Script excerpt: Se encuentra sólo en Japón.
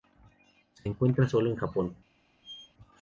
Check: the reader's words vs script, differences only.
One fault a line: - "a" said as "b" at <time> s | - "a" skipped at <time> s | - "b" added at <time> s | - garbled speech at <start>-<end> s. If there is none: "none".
none